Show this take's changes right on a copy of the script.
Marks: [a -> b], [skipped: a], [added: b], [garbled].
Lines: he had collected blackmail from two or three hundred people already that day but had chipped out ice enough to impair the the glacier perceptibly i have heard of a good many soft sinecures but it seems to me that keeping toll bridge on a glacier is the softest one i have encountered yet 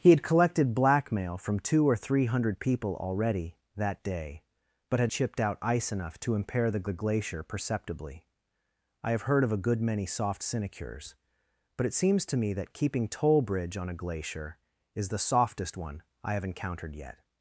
he had collected blackmail from two or three hundred people already that day but had chipped out ice enough to impair the the glacier perceptibly i have heard of a good many soft sinecures but it seems to me that keeping toll bridge on a glacier is the softest one i have encountered yet